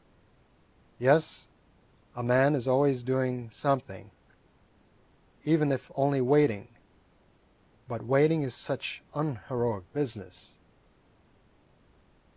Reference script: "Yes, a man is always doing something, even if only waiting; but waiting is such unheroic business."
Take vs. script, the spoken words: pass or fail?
pass